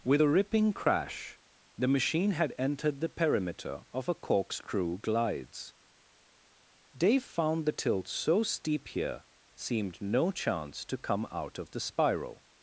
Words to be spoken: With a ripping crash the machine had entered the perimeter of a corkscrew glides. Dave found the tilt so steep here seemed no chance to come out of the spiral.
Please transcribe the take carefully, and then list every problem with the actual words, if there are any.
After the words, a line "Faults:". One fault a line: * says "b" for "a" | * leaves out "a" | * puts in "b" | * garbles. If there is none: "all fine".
With a ripping crash the machine had entered the perimeter of a corkscrew glides. Dave found the tilt so steep here seemed no chance to come out of the spiral.
Faults:
all fine